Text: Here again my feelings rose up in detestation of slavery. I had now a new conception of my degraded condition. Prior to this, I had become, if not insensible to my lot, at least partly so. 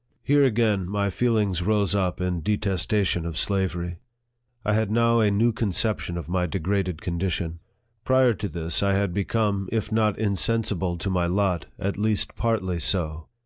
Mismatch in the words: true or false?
false